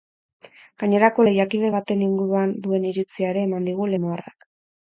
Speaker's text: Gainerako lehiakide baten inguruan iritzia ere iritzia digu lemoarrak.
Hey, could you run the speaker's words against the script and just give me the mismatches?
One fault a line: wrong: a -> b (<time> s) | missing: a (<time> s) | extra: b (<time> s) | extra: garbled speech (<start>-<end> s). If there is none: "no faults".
extra: duen (2.7 s)
wrong: iritzia -> eman (3.5 s)